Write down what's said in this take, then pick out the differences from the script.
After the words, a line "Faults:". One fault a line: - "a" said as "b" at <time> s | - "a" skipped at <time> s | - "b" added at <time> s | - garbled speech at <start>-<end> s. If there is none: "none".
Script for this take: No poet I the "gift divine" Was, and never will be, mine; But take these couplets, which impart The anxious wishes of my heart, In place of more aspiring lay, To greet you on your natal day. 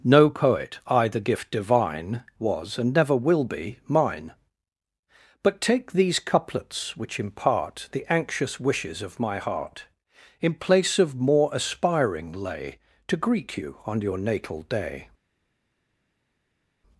No poet I the "gift divine" Was, and never will be, mine; But take these couplets, which impart The anxious wishes of my heart, In place of more aspiring lay, To greet you on your natal day.
Faults:
none